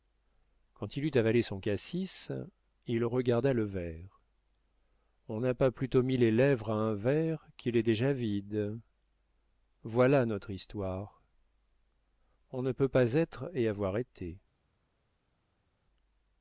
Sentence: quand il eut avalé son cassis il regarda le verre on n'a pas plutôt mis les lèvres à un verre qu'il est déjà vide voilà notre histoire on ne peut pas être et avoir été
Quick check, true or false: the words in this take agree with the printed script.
true